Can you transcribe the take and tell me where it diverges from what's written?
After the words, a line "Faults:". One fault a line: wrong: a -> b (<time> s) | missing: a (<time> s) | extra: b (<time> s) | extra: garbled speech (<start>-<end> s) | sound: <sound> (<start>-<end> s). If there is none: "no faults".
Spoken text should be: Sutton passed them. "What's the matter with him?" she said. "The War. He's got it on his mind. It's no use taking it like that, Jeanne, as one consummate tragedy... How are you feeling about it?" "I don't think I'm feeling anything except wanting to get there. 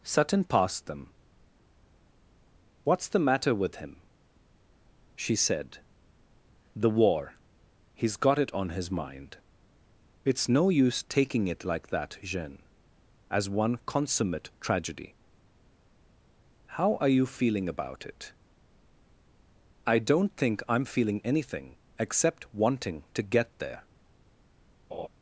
Sutton passed them. "What's the matter with him?" she said. "The War. He's got it on his mind. It's no use taking it like that, Jeanne, as one consummate tragedy... How are you feeling about it?" "I don't think I'm feeling anything except wanting to get there.
Faults:
sound: laugh (24.9-25.1 s)